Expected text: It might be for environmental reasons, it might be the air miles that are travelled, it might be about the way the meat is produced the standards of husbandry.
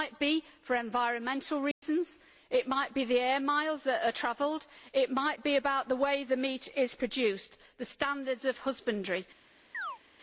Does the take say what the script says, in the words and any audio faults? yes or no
no